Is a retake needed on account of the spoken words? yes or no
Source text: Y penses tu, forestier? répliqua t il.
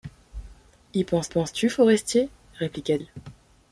yes